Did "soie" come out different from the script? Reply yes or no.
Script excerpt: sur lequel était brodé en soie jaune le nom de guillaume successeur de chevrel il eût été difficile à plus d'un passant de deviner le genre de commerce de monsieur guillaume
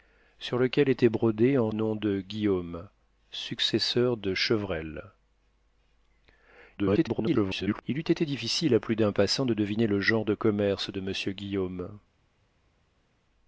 yes